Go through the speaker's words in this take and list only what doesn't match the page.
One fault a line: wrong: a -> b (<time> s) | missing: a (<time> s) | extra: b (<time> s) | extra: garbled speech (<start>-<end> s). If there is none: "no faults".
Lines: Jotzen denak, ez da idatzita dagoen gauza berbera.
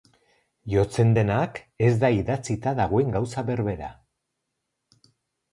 no faults